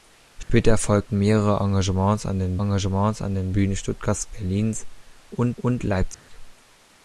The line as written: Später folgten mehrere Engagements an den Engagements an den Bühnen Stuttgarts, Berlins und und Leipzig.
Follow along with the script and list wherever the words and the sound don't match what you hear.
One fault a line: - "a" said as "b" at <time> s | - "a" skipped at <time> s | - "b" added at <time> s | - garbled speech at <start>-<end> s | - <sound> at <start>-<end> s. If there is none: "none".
- dropout at 0.4-0.5 s
- dropout at 6.1-6.3 s